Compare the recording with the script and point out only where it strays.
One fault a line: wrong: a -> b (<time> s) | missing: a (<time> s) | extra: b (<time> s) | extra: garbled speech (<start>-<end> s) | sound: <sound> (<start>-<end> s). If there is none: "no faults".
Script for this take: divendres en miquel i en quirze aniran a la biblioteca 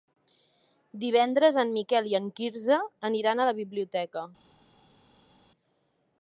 no faults